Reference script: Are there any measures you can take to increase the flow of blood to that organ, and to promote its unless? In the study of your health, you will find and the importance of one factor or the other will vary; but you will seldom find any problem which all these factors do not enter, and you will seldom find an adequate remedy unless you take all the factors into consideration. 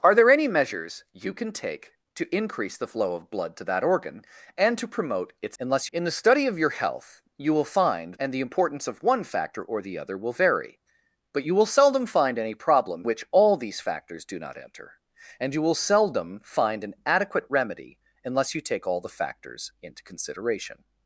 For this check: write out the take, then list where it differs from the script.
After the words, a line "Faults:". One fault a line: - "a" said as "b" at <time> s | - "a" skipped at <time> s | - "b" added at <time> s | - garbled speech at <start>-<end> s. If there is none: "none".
Are there any measures you can take to increase the flow of blood to that organ, and to promote its unless? In the study of your health, you will find and the importance of one factor or the other will vary; but you will seldom find any problem which all these factors do not enter, and you will seldom find an adequate remedy unless you take all the factors into consideration.
Faults:
none